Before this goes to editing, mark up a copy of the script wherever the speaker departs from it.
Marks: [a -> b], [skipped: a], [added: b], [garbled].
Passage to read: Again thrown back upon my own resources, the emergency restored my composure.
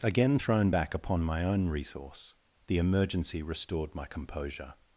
Again thrown back upon my own [resources, -> resource] the emergency restored my composure.